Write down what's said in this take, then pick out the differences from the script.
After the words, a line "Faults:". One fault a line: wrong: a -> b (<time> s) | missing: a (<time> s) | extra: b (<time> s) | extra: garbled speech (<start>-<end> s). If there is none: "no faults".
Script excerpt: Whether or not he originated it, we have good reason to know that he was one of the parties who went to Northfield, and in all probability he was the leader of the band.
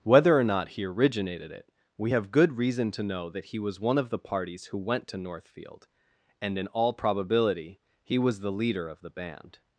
Whether or not he originated it, we have good reason to know that he was one of the parties who went to Northfield, and in all probability he was the leader of the band.
Faults:
no faults